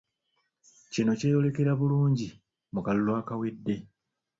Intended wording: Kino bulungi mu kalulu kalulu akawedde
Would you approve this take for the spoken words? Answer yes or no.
no